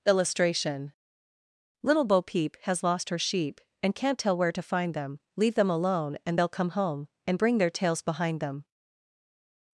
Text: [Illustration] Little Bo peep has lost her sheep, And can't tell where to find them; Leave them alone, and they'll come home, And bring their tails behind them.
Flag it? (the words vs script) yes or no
no